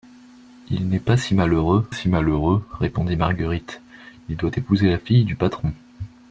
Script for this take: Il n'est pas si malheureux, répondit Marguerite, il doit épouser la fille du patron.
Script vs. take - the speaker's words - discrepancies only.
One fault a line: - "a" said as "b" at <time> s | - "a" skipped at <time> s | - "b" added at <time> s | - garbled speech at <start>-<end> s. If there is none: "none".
- "si malheureux" added at 1.9 s